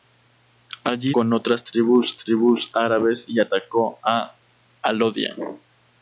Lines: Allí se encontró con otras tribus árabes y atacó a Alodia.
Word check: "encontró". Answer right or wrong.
wrong